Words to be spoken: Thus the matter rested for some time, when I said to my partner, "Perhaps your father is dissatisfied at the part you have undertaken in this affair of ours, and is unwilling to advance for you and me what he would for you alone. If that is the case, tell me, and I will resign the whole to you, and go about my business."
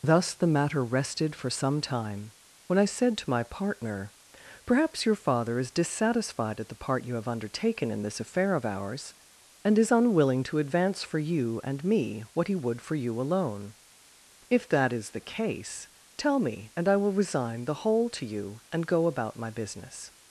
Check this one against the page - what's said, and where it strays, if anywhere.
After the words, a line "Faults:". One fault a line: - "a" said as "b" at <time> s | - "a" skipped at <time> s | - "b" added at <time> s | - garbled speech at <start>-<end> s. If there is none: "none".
Thus the matter rested for some time, when I said to my partner, "Perhaps your father is dissatisfied at the part you have undertaken in this affair of ours, and is unwilling to advance for you and me what he would for you alone. If that is the case, tell me, and I will resign the whole to you, and go about my business."
Faults:
none